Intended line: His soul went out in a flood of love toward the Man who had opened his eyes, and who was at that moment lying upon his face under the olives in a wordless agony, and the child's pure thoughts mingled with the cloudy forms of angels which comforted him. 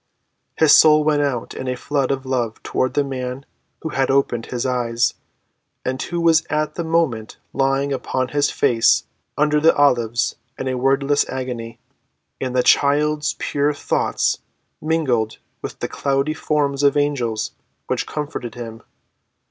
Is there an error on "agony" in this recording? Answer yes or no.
no